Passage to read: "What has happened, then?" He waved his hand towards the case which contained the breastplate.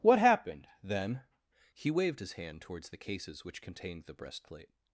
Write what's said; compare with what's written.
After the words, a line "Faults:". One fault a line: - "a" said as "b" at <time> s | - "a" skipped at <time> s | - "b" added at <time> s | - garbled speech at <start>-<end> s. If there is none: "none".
"What happened, then?" He waved his hand towards the cases which contained the breastplate.
Faults:
- "has" skipped at 0.2 s
- "case" said as "cases" at 3.0 s